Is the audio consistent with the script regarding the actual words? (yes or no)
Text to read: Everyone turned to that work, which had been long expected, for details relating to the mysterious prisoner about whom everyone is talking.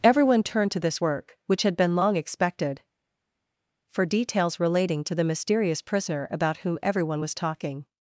no